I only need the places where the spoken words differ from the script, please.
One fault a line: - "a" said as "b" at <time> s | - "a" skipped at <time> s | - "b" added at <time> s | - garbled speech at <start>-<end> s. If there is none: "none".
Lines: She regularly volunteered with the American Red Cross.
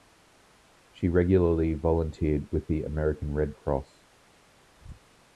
none